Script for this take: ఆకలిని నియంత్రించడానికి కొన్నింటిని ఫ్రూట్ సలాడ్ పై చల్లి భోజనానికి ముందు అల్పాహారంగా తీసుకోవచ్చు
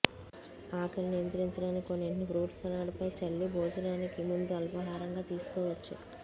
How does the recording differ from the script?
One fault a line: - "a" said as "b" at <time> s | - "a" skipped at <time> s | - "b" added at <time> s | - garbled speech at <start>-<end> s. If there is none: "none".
none